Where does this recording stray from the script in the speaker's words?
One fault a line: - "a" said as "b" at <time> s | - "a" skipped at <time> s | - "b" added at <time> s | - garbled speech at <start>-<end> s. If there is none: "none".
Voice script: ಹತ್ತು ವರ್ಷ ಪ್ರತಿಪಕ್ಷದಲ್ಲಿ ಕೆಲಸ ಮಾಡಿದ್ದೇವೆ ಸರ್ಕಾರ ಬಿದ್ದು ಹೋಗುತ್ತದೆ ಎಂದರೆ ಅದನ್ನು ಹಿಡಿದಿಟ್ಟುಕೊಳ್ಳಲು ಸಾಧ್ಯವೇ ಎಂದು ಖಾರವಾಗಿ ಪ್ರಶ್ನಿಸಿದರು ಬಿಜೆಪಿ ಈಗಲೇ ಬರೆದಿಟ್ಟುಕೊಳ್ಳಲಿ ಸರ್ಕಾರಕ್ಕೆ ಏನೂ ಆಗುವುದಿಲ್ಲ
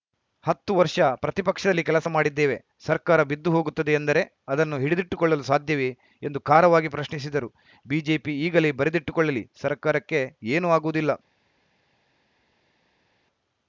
none